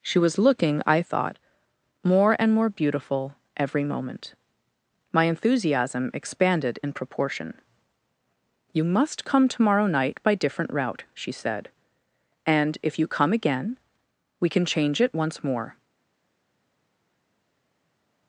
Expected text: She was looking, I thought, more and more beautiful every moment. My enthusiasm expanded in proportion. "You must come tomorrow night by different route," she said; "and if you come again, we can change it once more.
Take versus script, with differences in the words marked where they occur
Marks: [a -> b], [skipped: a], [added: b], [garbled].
She was looking, I thought, more and more beautiful every moment. My enthusiasm expanded in proportion. "You must come tomorrow night by different route," she said; "and if you come again, we can change it once more.